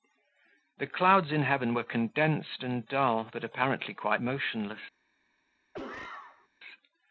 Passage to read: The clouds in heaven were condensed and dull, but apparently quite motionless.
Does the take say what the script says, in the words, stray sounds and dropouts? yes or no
no